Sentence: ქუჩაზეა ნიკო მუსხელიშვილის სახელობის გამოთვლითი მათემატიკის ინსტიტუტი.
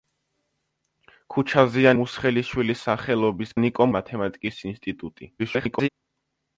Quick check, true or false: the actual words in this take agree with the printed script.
false